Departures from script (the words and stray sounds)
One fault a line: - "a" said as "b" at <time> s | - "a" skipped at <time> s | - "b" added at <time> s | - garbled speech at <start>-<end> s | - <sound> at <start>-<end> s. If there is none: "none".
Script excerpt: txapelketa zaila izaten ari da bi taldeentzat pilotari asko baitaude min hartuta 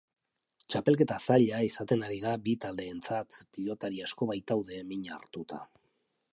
none